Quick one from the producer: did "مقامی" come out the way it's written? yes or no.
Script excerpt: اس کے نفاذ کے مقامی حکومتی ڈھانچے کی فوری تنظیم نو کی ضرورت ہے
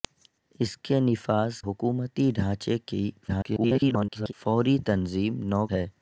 no